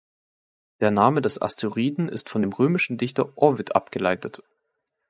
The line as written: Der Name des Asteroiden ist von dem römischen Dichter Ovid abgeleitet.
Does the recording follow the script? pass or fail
pass